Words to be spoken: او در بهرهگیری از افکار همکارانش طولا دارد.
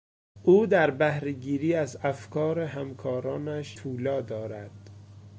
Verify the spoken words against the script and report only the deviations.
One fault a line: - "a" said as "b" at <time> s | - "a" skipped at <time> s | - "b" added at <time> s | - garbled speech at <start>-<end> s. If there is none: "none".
none